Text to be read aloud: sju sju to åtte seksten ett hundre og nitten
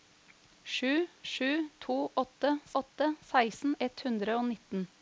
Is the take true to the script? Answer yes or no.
no